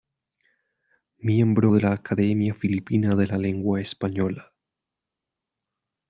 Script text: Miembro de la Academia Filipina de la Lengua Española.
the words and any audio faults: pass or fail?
pass